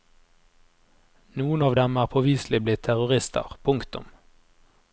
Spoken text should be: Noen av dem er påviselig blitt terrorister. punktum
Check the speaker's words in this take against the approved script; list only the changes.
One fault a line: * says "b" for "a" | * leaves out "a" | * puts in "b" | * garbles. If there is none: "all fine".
all fine